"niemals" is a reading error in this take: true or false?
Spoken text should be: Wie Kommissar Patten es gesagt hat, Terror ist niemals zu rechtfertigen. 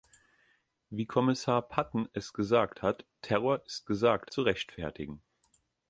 true